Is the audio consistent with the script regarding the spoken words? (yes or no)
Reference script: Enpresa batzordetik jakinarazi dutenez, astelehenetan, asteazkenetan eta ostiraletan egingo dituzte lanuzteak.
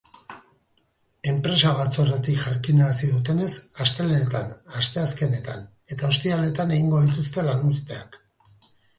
yes